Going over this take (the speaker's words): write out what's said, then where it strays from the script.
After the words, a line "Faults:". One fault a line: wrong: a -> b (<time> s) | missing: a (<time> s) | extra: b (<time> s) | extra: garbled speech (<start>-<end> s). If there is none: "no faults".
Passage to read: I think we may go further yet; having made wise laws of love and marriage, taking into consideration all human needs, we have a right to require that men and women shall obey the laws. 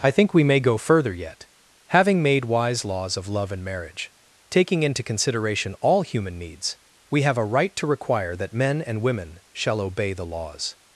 I think we may go further yet; having made wise laws of love and marriage, taking into consideration all human needs, we have a right to require that men and women shall obey the laws.
Faults:
no faults